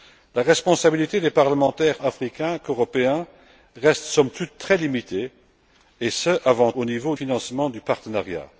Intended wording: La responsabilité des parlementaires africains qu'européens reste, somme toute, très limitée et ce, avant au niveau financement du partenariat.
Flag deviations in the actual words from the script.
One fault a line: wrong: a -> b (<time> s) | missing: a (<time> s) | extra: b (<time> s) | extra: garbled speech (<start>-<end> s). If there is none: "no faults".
no faults